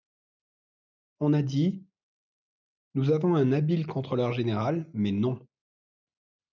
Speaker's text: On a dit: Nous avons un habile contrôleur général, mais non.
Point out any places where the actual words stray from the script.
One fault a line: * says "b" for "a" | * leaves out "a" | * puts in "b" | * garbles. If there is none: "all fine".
all fine